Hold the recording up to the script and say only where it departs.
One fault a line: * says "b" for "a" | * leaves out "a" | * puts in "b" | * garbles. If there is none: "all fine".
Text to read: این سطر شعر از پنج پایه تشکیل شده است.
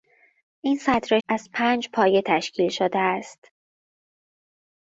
* leaves out "شعر"